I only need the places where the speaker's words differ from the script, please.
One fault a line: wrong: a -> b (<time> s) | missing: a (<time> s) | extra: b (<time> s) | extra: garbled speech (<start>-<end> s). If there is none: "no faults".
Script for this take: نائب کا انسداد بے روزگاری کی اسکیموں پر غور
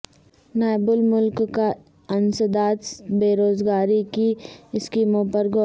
extra: الملک (0.9 s)